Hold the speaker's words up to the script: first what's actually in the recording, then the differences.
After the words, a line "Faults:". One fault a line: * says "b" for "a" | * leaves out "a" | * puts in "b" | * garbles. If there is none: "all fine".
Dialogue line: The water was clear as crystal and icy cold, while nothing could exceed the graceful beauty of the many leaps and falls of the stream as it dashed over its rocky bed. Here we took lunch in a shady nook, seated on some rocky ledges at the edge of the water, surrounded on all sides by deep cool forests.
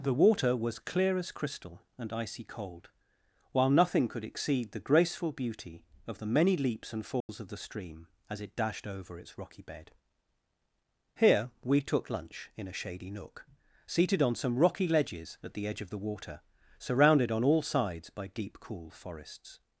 The water was clear as crystal and icy cold, while nothing could exceed the graceful beauty of the many leaps and falls of the stream as it dashed over its rocky bed. Here we took lunch in a shady nook, seated on some rocky ledges at the edge of the water, surrounded on all sides by deep cool forests.
Faults:
all fine